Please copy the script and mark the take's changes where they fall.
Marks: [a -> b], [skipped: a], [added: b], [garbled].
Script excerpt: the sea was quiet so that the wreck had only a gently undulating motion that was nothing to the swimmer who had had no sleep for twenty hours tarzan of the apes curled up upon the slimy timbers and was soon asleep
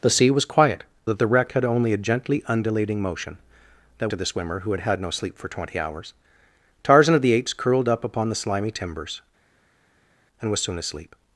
the sea was quiet [skipped: so] that the wreck had only a gently undulating motion that [skipped: was nothing] to the swimmer who had had no sleep for twenty hours tarzan of the apes curled up upon the slimy timbers and was soon asleep